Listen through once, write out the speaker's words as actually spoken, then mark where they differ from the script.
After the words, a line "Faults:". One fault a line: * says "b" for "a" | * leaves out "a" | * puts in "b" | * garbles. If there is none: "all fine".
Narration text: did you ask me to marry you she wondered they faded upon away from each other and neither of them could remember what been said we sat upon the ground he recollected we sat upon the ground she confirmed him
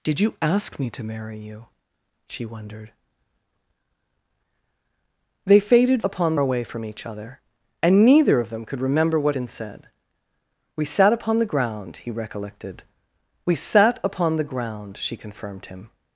did you ask me to marry you she wondered they faded upon away from each other and neither of them could remember what been said we sat upon the ground he recollected we sat upon the ground she confirmed him
Faults:
all fine